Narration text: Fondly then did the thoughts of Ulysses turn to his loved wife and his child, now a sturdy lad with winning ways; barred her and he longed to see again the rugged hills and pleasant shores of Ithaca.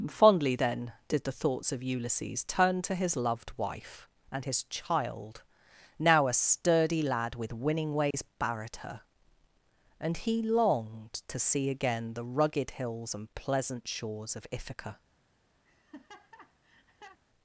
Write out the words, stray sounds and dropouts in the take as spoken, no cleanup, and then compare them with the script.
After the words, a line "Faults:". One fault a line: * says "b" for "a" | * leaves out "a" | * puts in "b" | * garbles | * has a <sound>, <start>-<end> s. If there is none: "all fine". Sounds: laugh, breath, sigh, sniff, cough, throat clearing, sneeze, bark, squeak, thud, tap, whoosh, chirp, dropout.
Fondly then did the thoughts of Ulysses turn to his loved wife and his child, now a sturdy lad with winning ways; barred her and he longed to see again the rugged hills and pleasant shores of Ithaca.
Faults:
* has a dropout, 8.1-8.1 s
* has a laugh, 15.6-17.2 s